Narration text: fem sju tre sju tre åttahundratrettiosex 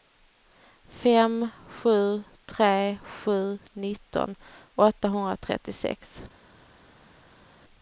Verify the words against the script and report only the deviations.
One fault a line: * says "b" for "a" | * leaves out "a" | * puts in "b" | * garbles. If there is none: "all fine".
* says "nitton" for "tre"